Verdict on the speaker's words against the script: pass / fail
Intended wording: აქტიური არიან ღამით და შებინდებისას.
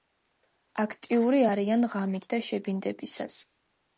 pass